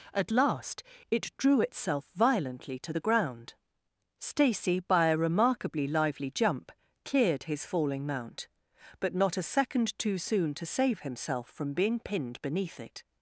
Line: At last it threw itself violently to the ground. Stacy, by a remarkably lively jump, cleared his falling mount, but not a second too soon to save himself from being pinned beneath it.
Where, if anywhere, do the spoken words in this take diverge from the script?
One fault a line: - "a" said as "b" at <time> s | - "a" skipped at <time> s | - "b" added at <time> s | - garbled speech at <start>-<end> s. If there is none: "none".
- "threw" said as "drew" at 1.4 s